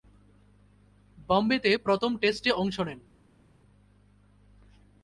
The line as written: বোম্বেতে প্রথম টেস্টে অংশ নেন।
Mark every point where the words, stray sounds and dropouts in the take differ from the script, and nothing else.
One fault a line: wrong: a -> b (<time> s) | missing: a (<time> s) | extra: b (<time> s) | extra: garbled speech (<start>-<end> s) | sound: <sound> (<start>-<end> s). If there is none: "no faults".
no faults